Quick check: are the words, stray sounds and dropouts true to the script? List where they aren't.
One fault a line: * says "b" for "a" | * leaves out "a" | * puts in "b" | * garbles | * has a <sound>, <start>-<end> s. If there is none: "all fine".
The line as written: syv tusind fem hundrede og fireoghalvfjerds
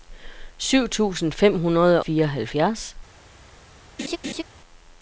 * leaves out "og"
* has a laugh, 4.0-4.4 s